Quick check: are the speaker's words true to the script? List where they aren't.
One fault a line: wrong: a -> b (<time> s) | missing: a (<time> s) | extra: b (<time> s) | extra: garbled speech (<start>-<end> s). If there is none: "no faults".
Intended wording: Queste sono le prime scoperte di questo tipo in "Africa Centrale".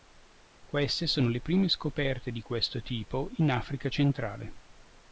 no faults